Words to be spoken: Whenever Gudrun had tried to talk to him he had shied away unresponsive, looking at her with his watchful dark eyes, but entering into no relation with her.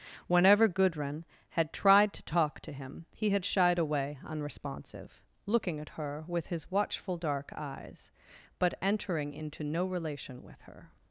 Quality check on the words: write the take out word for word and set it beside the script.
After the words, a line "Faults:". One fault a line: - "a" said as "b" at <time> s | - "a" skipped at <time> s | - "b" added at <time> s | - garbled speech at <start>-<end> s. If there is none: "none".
Whenever Gudrun had tried to talk to him he had shied away unresponsive, looking at her with his watchful dark eyes, but entering into no relation with her.
Faults:
none